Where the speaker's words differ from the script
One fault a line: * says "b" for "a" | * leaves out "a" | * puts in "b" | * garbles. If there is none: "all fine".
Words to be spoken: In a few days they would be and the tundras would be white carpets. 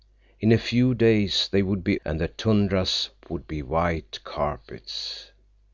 all fine